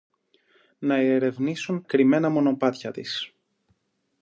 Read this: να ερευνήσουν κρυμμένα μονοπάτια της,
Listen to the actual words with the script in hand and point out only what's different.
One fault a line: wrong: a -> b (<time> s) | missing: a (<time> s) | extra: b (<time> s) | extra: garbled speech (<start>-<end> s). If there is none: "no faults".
no faults